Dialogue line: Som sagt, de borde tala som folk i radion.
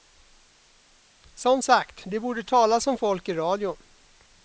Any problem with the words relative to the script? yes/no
no